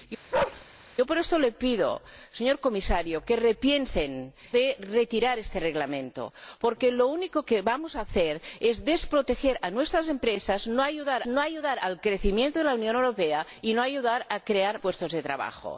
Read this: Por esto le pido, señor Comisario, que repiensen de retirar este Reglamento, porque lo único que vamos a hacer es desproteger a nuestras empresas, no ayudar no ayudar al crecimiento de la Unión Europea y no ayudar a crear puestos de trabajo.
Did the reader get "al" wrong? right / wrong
right